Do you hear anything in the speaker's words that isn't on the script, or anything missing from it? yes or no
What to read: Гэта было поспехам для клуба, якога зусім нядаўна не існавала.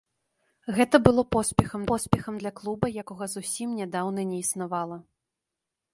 yes